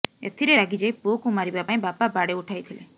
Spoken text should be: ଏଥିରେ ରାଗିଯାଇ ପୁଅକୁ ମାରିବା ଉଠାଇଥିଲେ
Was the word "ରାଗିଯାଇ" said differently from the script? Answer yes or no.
no